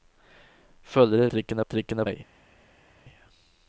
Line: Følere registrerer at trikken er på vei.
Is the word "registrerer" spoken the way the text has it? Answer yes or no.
no